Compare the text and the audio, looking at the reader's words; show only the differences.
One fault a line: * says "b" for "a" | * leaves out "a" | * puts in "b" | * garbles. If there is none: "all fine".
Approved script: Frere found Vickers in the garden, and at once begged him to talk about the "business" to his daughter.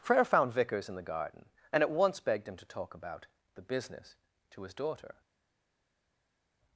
all fine